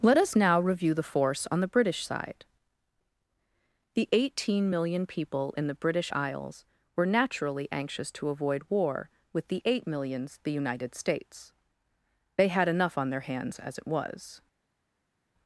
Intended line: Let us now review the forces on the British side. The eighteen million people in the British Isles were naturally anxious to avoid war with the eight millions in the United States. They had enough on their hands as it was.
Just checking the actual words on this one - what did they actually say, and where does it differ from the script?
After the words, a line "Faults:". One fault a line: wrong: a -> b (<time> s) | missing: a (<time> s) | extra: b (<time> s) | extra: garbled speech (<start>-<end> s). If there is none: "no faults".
Let us now review the force on the British side. The eighteen million people in the British Isles were naturally anxious to avoid war with the eight millions the United States. They had enough on their hands as it was.
Faults:
wrong: forces -> force (1.0 s)
missing: in (10.4 s)